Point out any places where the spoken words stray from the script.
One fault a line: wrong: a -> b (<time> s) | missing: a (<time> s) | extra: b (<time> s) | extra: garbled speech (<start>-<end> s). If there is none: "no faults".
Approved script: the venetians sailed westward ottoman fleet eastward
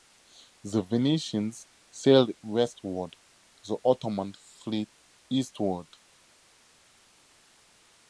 extra: the (3.7 s)